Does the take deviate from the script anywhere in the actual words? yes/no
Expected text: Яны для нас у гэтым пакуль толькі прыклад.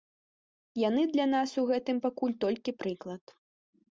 no